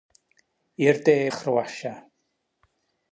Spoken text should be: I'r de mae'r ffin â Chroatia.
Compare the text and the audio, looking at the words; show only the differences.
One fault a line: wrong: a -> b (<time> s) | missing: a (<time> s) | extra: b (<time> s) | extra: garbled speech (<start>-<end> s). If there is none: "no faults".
missing: mae'r ffin (1.1 s)